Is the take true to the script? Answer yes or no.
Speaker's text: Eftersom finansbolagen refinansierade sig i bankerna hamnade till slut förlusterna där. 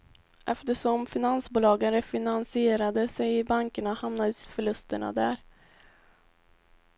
no